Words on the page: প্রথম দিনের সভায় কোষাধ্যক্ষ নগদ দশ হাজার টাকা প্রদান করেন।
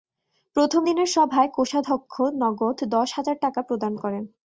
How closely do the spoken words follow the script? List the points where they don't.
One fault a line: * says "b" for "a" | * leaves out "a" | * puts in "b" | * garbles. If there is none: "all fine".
all fine